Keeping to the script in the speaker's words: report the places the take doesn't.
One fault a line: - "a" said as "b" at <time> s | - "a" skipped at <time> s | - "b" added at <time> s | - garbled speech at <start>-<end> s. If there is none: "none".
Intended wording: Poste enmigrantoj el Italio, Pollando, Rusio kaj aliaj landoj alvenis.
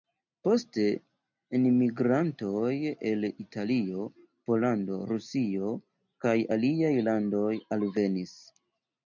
none